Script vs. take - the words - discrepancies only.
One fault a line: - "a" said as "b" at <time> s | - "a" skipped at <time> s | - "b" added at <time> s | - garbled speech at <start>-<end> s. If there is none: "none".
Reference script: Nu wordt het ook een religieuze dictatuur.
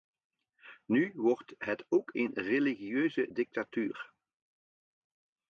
none